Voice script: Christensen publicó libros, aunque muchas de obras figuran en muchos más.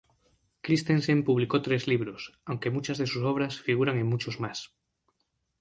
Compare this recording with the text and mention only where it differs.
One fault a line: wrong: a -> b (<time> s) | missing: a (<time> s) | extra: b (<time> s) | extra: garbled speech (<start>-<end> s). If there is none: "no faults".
extra: tres (1.6 s)
extra: sus (3.0 s)